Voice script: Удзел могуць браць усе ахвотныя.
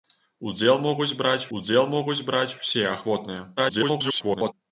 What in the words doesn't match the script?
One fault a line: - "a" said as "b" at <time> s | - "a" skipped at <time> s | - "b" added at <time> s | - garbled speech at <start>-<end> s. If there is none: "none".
- "удзел могуць браць" added at 1.6 s
- garbled speech at 3.6-4.5 s